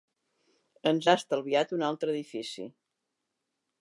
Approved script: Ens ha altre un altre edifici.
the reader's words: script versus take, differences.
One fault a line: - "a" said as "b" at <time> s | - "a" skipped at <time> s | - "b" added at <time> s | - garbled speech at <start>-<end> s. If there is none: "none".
- "altre" said as "estalviat" at 1.2 s